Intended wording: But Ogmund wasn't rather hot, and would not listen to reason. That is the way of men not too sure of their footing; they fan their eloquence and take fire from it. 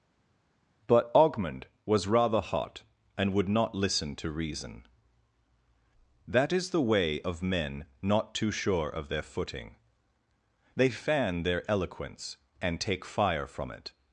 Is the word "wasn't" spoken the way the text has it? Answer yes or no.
no